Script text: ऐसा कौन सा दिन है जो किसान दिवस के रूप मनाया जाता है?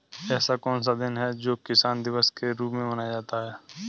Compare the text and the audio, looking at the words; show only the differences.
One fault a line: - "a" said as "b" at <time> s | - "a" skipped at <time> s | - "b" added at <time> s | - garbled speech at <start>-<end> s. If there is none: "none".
- "में" added at 2.7 s